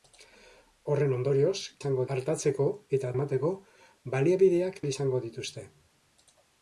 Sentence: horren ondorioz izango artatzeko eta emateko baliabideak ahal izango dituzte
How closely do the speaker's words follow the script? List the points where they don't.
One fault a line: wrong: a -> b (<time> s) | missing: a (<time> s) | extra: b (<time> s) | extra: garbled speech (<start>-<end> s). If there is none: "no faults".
no faults